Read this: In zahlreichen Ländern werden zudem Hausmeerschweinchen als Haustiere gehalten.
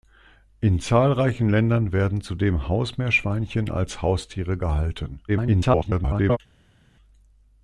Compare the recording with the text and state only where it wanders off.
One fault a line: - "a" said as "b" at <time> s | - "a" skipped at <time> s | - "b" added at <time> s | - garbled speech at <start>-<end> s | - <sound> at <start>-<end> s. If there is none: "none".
- garbled speech at 5.3-6.4 s